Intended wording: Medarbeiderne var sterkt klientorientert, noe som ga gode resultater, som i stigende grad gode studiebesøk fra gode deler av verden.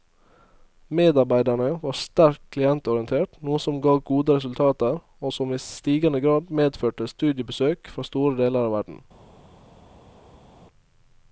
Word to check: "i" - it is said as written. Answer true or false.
true